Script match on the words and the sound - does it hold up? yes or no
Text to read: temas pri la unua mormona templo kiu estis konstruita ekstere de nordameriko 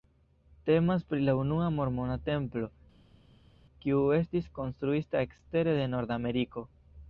yes